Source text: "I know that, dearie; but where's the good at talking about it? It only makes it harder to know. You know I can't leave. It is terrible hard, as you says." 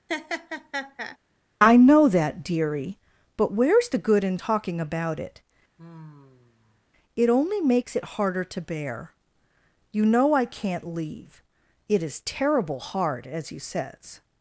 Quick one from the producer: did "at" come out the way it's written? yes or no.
no